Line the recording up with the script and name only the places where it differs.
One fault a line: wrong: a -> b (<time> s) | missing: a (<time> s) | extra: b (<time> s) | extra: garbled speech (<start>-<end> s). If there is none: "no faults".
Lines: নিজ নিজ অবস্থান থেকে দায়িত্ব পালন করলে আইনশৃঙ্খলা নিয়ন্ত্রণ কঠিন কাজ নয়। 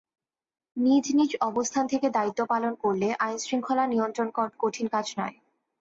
no faults